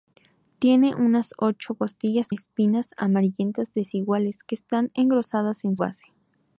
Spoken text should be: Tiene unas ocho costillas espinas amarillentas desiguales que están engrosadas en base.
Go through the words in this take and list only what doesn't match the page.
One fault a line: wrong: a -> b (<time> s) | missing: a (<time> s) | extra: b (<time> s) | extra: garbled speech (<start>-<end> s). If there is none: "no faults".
no faults